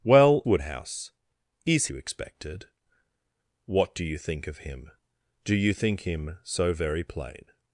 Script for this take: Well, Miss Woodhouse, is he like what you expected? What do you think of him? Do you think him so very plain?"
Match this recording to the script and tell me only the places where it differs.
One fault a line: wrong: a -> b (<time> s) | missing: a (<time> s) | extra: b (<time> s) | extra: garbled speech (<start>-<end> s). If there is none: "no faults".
missing: Miss (0.4 s)
missing: he like what (1.9 s)